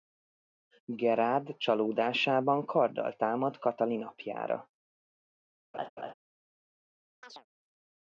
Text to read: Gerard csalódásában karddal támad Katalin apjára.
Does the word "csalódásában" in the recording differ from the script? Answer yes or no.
no